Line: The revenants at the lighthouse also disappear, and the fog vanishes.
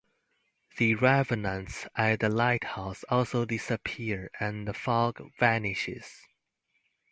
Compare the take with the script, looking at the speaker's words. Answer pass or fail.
pass